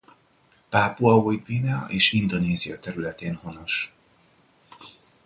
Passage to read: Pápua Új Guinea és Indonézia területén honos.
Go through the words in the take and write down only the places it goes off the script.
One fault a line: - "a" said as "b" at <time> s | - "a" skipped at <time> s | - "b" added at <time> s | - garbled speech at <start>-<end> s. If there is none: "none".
none